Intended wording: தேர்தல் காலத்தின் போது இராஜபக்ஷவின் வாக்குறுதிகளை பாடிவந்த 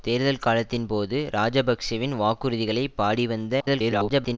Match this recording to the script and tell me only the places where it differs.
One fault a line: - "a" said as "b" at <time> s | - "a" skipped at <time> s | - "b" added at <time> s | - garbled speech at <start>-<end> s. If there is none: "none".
- garbled speech at 3.6-4.4 s